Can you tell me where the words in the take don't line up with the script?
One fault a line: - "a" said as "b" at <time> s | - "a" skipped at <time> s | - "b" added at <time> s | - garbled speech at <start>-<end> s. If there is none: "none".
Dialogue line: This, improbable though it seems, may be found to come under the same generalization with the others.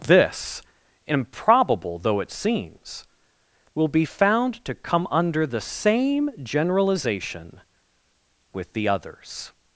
- "may" said as "will" at 3.7 s